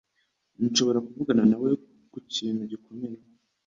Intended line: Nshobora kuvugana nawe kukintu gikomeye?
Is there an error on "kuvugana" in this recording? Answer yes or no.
no